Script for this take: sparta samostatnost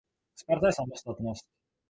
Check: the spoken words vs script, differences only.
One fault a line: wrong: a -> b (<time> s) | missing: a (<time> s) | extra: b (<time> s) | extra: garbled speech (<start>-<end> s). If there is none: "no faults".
no faults